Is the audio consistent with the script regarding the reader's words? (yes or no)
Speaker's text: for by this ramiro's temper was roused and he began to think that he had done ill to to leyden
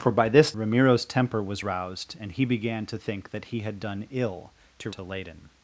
yes